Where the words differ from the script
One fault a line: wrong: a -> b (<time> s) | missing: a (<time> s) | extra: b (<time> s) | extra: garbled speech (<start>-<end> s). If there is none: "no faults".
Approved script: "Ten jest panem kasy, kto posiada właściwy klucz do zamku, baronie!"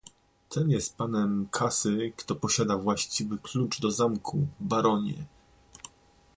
no faults